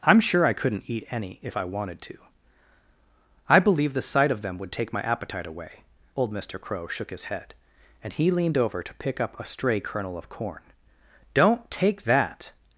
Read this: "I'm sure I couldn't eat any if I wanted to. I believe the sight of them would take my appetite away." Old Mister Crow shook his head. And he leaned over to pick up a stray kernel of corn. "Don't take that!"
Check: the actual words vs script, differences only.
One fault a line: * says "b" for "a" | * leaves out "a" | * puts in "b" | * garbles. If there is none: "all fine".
all fine